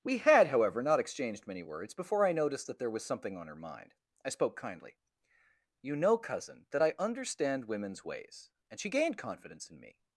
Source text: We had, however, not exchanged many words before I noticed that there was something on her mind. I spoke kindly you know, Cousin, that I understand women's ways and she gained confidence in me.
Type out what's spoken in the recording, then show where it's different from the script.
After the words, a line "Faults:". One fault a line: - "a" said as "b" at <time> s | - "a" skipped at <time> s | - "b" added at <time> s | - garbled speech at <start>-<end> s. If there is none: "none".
We had, however, not exchanged many words before I noticed that there was something on her mind. I spoke kindly you know, Cousin, that I understand women's ways and she gained confidence in me.
Faults:
none